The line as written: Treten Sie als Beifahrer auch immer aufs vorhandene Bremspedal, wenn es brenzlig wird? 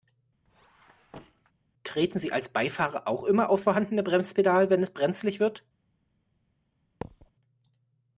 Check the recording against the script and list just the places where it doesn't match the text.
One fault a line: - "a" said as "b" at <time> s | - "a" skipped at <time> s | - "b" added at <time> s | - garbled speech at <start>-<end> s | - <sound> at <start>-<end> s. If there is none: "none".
- squeak at 0.5-1.5 s
- thud at 7.0-7.3 s